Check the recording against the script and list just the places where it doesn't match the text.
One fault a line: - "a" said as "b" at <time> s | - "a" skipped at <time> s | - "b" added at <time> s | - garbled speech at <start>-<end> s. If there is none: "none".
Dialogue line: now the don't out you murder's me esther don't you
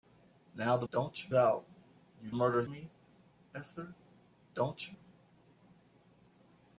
none